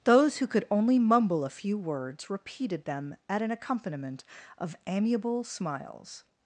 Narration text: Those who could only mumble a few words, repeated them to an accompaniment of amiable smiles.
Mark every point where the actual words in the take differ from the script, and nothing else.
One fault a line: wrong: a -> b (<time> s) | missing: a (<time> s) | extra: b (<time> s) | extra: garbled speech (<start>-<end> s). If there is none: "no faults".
wrong: to -> at (3.3 s)